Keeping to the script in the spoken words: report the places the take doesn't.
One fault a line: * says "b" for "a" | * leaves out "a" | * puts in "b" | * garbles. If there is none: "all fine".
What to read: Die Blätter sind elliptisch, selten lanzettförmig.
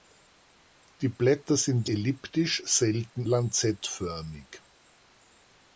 all fine